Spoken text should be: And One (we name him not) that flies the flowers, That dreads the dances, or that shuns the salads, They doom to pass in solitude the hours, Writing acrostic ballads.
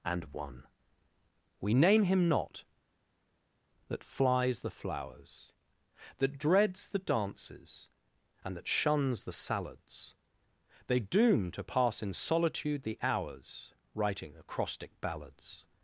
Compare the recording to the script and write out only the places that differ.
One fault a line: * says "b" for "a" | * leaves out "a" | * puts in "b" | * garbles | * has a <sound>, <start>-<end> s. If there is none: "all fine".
* says "and" for "or"